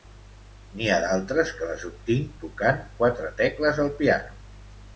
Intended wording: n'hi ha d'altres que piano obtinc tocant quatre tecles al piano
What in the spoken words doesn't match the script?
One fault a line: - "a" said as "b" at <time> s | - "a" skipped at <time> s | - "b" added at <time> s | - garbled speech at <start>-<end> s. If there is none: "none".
- "piano" said as "les" at 1.7 s